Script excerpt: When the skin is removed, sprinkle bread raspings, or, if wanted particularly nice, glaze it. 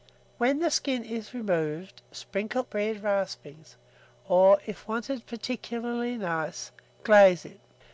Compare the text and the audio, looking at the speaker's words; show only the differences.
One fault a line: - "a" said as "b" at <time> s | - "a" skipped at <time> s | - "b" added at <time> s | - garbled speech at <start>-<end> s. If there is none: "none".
none